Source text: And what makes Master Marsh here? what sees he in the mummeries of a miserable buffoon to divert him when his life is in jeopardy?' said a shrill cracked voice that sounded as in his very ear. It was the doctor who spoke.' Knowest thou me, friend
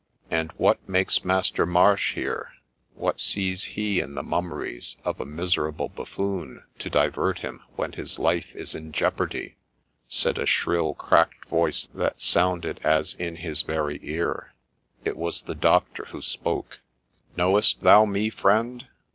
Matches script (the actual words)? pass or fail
pass